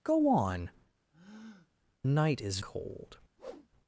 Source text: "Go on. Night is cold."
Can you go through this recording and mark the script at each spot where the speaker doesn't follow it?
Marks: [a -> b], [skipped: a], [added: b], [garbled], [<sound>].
"Go on. [breath] Night is cold." [whoosh]